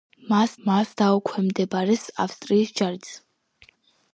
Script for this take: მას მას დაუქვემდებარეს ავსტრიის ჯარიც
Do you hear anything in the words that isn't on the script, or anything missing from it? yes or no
no